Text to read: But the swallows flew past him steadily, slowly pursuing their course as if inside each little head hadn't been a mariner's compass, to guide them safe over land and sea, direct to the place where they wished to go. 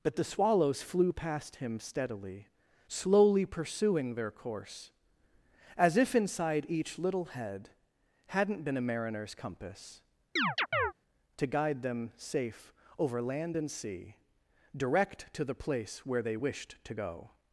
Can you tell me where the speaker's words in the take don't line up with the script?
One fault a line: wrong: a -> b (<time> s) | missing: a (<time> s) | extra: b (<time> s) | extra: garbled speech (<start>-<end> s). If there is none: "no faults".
no faults